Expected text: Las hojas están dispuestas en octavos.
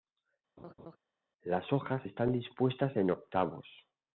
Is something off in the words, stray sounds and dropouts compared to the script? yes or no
yes